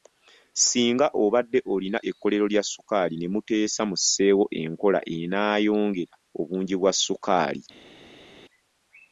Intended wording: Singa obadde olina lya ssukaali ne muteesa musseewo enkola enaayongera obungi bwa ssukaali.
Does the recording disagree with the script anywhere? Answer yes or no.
yes